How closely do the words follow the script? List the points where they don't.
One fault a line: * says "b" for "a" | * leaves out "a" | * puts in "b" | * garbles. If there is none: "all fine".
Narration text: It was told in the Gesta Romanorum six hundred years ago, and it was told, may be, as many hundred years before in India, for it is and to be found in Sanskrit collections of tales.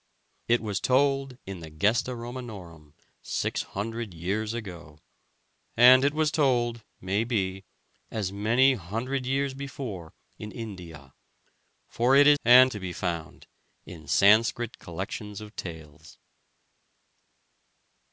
all fine